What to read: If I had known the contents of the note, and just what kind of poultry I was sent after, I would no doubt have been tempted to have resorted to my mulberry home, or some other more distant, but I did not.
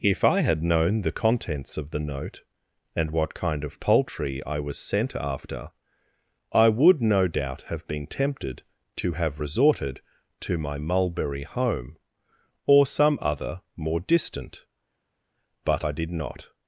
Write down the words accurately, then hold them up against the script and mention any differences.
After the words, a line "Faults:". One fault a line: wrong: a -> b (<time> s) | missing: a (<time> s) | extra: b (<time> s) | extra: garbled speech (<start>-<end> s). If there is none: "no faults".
If I had known the contents of the note, and what kind of poultry I was sent after, I would no doubt have been tempted to have resorted to my mulberry home, or some other more distant, but I did not.
Faults:
missing: just (3.1 s)